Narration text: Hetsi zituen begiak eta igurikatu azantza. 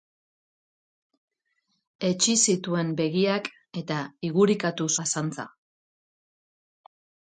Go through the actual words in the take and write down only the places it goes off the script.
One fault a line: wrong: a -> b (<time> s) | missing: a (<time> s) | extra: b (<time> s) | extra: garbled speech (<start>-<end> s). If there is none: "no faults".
no faults